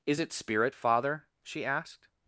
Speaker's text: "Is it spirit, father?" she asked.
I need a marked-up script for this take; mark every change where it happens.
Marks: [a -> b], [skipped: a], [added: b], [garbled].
"Is it spirit, father?" she asked.